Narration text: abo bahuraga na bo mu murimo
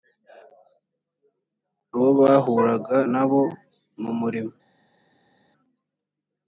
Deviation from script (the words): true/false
false